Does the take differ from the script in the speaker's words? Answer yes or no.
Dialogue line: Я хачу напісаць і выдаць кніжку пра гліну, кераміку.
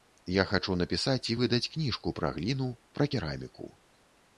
yes